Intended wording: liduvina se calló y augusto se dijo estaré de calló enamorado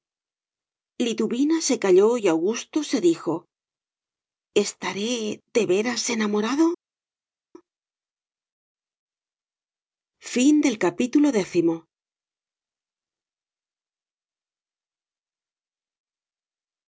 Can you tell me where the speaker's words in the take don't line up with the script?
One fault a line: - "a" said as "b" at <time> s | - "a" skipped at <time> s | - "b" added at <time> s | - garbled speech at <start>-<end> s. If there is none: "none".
- "calló" said as "veras" at 5.7 s